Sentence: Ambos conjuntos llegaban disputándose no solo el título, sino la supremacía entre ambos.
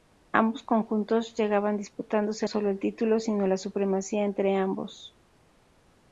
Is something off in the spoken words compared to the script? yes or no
yes